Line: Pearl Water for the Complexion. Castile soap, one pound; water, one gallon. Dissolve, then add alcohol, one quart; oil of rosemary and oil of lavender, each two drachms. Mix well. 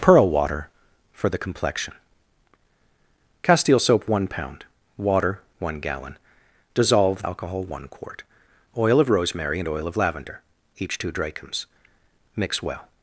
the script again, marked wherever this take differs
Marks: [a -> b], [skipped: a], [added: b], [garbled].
Pearl Water for the Complexion. Castile soap, one pound; water, one gallon. Dissolve, [skipped: then add] alcohol, one quart; oil of rosemary and oil of lavender, each two drachms. Mix well.